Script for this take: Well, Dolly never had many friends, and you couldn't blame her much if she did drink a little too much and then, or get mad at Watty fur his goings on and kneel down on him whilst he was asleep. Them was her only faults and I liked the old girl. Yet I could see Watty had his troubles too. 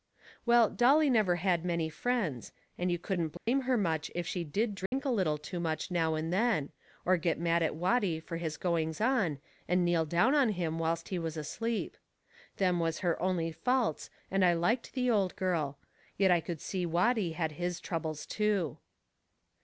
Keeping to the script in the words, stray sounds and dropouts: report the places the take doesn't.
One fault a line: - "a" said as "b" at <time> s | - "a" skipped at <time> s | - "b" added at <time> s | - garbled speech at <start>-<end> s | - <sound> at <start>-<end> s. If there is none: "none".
- dropout at 3.4-3.5 s
- dropout at 4.9-4.9 s
- "now" added at 5.9 s